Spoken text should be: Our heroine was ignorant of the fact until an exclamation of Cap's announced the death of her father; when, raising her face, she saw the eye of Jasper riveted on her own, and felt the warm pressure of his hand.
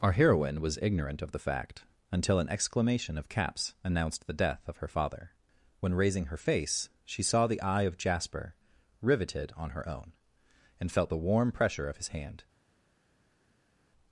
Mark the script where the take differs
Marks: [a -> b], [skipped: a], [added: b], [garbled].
Our heroine was ignorant of the fact until an exclamation of Cap's announced the death of her father; when, raising her face, she saw the eye of Jasper riveted on her own, and felt the warm pressure of his hand.